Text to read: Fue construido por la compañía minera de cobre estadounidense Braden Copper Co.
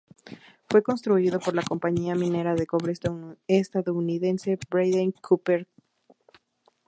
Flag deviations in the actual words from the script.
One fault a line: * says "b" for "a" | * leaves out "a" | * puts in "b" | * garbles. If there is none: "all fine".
all fine